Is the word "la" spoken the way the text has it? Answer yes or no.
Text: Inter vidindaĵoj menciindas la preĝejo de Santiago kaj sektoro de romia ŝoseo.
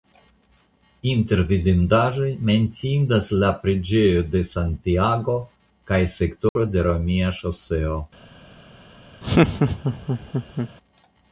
yes